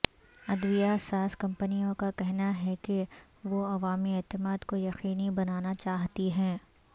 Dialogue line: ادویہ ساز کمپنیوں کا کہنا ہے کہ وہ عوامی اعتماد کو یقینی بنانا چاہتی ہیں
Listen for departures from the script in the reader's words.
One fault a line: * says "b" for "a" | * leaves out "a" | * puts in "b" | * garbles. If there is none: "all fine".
all fine